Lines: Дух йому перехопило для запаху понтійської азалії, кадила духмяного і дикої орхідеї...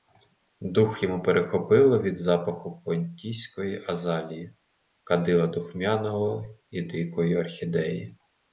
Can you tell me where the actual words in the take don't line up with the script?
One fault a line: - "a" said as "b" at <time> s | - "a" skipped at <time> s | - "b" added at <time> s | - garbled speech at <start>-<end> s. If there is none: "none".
- "для" said as "від" at 2.0 s